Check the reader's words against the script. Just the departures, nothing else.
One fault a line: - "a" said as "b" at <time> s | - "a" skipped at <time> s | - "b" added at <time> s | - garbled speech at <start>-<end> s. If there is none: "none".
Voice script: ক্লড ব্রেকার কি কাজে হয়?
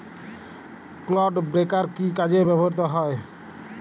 - "ব্যবহৃত" added at 2.5 s